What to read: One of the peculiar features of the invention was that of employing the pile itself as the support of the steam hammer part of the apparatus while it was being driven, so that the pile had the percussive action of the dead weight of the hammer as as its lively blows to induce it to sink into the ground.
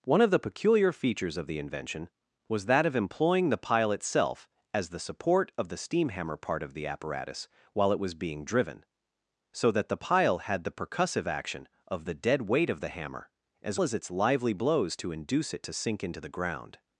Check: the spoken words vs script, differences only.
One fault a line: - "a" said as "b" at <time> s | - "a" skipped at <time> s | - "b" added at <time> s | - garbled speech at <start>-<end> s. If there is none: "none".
none